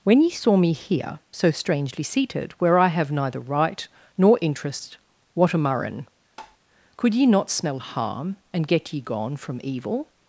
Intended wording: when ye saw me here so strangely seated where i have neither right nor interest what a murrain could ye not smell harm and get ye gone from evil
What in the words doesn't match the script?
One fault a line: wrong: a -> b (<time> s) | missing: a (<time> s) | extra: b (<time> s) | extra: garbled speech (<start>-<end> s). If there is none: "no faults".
no faults